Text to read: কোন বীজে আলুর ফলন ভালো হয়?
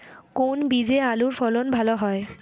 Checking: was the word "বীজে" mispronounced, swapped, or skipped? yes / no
no